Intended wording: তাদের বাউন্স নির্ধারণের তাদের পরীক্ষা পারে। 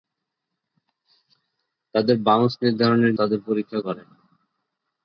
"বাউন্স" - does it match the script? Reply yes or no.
yes